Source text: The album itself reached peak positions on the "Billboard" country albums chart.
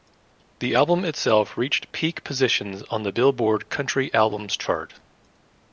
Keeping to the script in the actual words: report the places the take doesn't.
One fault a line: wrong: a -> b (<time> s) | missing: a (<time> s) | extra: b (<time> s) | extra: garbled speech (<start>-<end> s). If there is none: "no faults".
no faults